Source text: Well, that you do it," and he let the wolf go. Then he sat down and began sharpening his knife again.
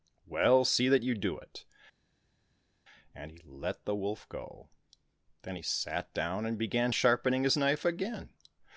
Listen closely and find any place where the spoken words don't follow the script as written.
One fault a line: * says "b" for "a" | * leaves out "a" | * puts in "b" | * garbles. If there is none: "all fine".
* puts in "see"